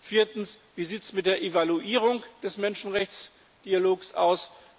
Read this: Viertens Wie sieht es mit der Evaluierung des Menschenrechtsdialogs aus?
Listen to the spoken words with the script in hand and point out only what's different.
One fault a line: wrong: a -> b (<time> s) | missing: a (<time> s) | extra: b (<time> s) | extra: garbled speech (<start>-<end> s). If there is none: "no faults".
no faults